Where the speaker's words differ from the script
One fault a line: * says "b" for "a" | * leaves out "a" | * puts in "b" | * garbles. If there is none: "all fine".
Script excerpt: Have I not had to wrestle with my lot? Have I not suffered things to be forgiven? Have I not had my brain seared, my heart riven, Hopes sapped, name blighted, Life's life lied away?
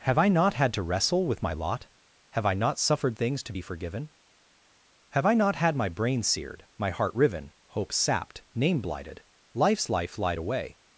all fine